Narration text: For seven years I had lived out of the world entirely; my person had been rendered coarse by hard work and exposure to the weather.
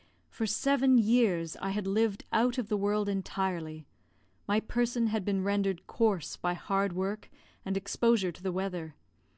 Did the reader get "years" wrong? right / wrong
right